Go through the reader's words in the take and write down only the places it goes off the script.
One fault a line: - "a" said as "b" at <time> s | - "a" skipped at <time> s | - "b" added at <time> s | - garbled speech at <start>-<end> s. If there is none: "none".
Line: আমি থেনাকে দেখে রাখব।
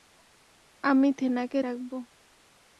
- "দেখে" skipped at 1.6 s